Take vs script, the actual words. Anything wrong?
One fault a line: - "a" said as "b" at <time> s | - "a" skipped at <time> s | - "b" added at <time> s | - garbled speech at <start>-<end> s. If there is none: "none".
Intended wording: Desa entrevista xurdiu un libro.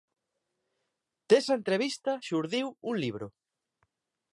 none